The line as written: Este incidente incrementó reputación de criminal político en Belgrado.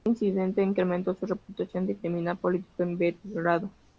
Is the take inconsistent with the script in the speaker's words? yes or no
yes